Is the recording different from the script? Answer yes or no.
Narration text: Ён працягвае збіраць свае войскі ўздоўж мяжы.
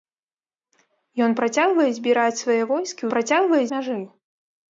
yes